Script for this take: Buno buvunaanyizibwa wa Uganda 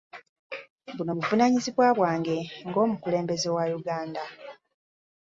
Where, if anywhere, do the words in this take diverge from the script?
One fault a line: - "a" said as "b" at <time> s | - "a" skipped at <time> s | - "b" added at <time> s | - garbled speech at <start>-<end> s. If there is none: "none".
- "bwange ng'omukulembeze" added at 2.0 s